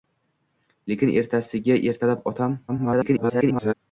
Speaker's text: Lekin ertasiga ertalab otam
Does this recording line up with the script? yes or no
no